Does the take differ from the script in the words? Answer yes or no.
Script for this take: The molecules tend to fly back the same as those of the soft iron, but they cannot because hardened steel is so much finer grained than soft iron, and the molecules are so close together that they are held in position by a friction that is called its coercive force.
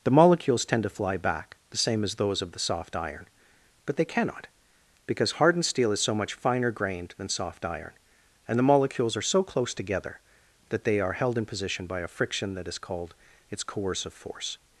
no